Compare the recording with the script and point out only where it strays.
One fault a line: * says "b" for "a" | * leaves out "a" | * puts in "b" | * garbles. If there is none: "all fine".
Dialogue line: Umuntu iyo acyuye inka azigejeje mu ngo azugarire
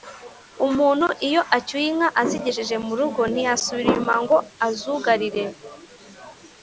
* puts in "rugo ntiyasubira inyuma"